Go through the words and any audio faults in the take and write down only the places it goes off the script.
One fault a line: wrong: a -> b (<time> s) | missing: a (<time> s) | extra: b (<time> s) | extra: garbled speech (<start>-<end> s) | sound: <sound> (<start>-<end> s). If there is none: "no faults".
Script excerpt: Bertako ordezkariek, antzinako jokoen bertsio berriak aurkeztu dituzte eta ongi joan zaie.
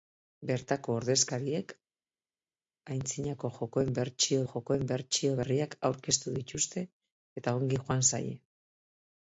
extra: jokoen bertsio (4.5 s)